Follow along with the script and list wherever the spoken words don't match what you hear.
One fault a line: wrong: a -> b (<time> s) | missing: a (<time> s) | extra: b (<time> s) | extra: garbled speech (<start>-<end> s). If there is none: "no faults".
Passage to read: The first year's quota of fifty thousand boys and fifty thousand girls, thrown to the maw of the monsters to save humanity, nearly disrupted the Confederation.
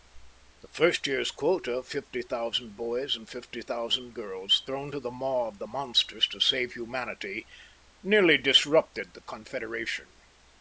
no faults